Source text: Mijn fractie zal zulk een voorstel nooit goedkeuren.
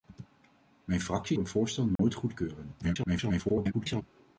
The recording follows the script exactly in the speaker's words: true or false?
false